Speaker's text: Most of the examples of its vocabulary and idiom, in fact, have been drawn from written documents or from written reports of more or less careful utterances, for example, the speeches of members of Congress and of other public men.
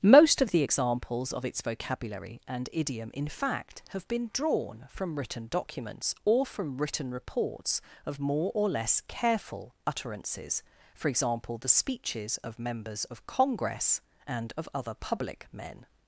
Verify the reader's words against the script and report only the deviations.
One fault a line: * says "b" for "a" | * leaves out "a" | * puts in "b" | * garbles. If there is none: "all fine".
all fine